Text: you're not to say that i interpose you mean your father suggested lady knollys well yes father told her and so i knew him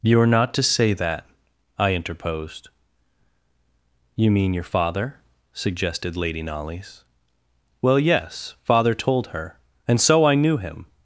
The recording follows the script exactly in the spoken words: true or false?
false